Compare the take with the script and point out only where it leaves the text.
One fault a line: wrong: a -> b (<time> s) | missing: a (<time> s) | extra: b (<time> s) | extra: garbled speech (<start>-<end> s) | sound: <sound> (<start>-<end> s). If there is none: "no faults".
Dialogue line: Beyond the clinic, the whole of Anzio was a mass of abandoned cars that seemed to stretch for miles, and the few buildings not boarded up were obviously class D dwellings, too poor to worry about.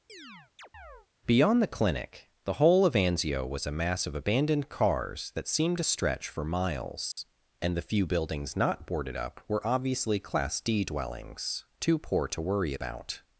sound: chirp (0.1-1.1 s)
sound: dropout (7.1-7.2 s)